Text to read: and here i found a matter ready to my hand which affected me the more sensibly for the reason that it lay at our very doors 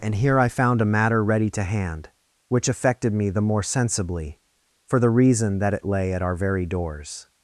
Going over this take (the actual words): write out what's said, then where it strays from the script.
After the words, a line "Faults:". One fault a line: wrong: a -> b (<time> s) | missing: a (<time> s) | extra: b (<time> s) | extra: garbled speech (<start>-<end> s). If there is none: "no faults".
and here i found a matter ready to hand which affected me the more sensibly for the reason that it lay at our very doors
Faults:
missing: my (1.6 s)